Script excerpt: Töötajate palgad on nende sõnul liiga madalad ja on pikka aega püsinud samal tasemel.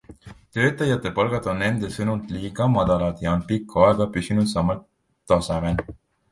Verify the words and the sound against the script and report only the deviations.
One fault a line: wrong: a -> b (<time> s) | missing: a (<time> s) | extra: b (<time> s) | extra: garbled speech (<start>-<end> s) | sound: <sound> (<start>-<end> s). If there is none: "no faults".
no faults